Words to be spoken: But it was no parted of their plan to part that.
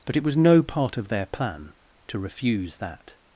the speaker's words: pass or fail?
fail